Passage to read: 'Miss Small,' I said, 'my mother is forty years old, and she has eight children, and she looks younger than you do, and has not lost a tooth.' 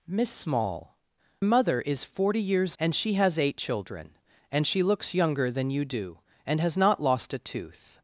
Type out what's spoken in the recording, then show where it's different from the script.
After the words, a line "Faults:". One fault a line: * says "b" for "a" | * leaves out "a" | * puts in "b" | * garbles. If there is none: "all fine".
'Miss Small,' mother is forty years and she has eight children, and she looks younger than you do, and has not lost a tooth.'
Faults:
* leaves out "I said my"
* leaves out "old"